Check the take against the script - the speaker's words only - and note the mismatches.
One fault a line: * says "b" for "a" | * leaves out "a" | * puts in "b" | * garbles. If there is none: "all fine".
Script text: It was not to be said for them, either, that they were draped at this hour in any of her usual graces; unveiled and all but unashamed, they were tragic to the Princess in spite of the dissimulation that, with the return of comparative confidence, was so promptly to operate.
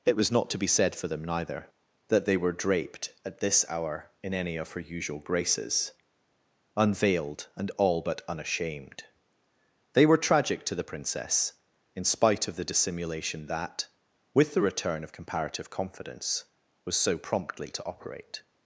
* says "neither" for "either"